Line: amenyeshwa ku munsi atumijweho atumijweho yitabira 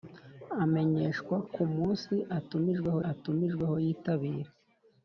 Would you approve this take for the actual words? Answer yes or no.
yes